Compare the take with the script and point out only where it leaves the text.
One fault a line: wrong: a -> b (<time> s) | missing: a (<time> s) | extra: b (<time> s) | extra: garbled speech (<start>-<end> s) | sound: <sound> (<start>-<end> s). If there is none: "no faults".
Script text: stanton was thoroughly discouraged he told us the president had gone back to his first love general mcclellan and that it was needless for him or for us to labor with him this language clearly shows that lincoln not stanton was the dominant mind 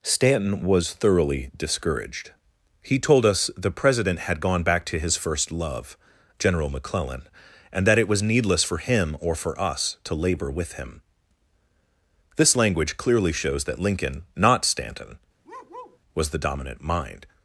sound: bark (15.4-16.0 s)